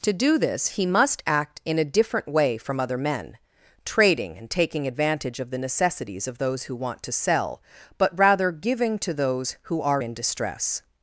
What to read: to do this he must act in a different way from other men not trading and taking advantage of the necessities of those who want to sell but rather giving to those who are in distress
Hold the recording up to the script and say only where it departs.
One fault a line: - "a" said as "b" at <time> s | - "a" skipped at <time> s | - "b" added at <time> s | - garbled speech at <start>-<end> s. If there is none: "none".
- "not" skipped at 3.4 s